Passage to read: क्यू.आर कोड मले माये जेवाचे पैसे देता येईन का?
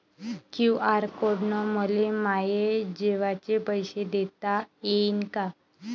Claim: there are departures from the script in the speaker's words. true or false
true